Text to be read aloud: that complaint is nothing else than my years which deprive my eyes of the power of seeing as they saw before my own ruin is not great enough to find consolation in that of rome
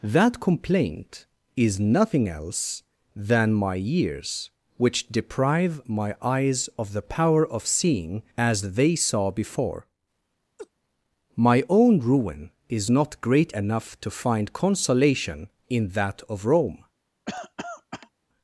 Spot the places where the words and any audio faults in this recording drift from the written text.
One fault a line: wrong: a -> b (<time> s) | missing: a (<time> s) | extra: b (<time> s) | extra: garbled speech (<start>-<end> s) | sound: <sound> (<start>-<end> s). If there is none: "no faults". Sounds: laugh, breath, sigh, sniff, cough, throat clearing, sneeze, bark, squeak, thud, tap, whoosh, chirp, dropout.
sound: laugh (10.6-10.7 s)
sound: cough (17.3-18.1 s)